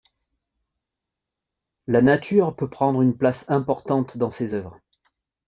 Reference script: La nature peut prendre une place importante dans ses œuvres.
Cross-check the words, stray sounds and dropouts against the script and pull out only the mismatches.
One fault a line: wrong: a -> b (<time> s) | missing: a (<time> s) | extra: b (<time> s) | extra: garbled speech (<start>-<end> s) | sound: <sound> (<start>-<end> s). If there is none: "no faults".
no faults